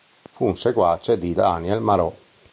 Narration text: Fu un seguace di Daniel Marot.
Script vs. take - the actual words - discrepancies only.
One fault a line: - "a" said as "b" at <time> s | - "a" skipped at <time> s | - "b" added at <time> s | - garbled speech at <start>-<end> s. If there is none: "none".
none